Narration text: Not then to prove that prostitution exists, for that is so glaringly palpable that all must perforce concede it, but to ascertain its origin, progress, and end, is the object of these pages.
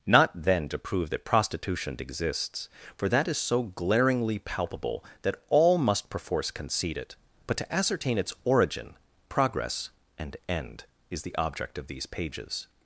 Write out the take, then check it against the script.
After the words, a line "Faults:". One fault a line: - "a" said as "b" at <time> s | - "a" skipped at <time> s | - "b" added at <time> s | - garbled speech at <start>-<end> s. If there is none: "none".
Not then to prove that prostitution exists, for that is so glaringly palpable that all must perforce concede it, but to ascertain its origin, progress, and end, is the object of these pages.
Faults:
none